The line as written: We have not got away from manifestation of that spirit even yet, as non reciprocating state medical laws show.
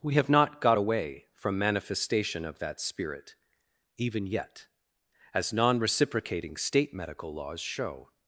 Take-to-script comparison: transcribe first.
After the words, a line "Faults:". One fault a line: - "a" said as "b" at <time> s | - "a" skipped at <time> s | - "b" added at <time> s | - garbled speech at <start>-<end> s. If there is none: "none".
We have not got away from manifestation of that spirit even yet, as non reciprocating state medical laws show.
Faults:
none